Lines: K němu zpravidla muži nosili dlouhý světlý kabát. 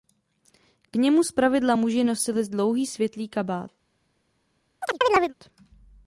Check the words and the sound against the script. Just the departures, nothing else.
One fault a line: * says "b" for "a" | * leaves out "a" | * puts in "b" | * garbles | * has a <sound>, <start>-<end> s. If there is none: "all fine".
* has a chirp, 4.8-5.3 s